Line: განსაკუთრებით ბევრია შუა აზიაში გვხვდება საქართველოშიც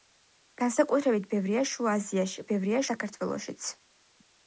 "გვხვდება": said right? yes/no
no